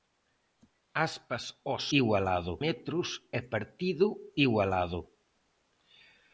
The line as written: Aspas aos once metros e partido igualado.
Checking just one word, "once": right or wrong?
wrong